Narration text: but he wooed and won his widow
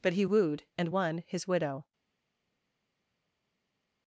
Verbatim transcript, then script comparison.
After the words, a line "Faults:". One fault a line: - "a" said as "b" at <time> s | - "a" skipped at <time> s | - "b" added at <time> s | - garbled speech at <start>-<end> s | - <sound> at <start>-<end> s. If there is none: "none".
but he wooed and won his widow
Faults:
none